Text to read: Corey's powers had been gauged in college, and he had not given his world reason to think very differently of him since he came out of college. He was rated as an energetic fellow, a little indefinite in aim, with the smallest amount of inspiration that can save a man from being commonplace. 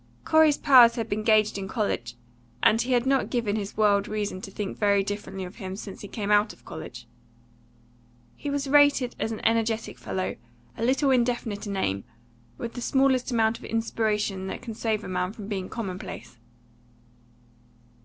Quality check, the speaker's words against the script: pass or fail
pass